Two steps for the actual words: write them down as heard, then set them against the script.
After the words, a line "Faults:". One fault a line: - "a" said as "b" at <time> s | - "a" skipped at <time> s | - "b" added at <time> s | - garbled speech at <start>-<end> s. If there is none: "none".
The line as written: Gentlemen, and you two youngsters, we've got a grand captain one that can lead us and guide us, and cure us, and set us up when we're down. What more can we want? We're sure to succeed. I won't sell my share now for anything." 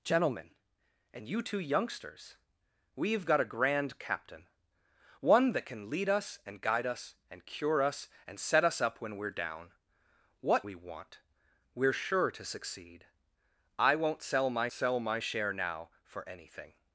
Gentlemen, and you two youngsters, we've got a grand captain one that can lead us and guide us, and cure us, and set us up when we're down. What we want? We're sure to succeed. I won't sell my sell my share now for anything."
Faults:
- "more can" skipped at 10.7 s
- "sell my" added at 14.7 s